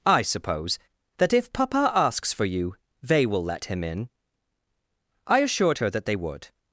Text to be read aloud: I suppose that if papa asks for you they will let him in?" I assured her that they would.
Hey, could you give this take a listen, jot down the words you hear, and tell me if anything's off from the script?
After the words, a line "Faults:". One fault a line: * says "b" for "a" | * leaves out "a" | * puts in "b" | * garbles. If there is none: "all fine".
I suppose that if papa asks for you they will let him in?" I assured her that they would.
Faults:
all fine